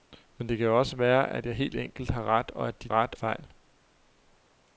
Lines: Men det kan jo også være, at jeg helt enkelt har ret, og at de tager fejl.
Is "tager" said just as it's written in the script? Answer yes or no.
no